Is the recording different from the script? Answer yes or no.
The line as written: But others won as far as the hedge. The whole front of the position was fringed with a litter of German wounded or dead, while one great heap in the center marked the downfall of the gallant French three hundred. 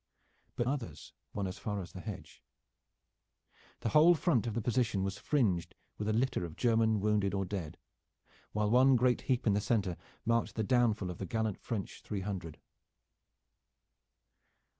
no